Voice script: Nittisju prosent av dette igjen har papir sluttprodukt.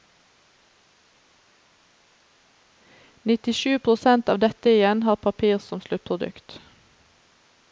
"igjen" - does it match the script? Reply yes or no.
yes